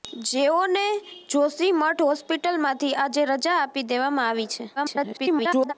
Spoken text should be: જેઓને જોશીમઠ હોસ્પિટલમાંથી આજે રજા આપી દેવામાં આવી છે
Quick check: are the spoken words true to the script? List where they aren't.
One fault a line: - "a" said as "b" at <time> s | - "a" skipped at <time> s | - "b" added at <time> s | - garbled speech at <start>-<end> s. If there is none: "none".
- garbled speech at 4.8-5.7 s